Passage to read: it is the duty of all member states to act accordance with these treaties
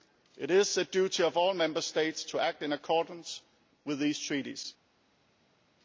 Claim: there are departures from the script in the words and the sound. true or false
true